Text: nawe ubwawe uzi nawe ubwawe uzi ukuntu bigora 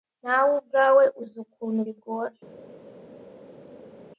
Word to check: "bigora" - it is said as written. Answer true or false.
true